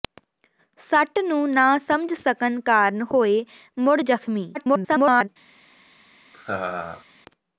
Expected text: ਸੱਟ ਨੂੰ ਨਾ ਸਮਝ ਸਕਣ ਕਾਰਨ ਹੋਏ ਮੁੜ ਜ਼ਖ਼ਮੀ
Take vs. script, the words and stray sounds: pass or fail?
fail